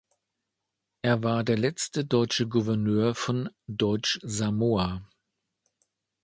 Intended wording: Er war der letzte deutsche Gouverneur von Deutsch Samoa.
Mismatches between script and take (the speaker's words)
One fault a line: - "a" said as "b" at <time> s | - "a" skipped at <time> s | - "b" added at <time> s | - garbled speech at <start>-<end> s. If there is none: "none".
none